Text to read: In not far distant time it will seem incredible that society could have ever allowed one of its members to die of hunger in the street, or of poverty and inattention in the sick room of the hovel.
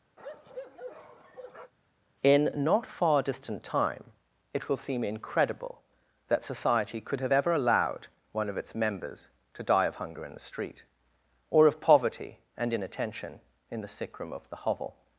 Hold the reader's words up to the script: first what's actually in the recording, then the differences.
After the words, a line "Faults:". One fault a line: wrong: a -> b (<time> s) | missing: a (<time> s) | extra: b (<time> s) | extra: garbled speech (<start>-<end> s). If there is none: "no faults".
In not far distant time it will seem incredible that society could have ever allowed one of its members to die of hunger in the street, or of poverty and inattention in the sick room of the hovel.
Faults:
no faults